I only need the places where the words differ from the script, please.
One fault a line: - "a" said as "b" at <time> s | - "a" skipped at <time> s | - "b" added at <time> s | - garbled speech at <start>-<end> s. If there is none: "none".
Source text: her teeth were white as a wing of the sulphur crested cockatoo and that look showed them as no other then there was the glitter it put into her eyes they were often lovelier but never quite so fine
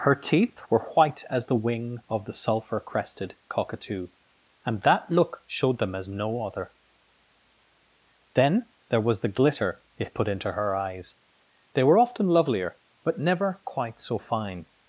- "a" said as "the" at 1.4 s